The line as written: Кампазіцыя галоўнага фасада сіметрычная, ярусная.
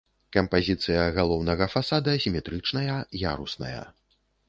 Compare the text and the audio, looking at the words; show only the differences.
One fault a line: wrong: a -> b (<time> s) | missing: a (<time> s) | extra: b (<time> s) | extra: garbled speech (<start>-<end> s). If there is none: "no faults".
no faults